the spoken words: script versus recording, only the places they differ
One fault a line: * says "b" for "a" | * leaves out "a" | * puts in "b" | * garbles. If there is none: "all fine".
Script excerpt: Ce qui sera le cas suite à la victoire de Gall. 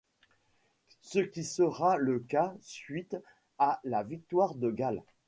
all fine